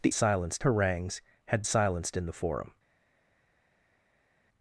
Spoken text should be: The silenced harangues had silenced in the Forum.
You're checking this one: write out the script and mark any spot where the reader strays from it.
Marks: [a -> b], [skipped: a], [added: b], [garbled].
The silenced harangues had silenced in the Forum.